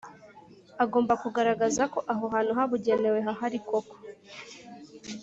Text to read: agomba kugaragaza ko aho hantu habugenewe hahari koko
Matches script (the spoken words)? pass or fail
pass